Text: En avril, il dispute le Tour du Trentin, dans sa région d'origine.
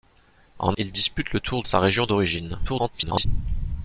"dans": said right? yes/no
no